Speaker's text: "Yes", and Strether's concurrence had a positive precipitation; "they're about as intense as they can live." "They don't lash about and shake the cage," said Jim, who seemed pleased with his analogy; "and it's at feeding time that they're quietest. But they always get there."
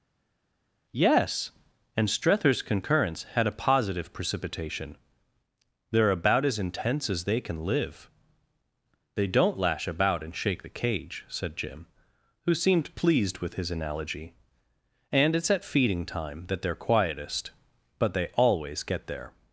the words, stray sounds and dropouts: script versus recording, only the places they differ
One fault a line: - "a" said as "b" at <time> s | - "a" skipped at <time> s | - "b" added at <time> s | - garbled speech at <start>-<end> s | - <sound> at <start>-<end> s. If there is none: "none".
none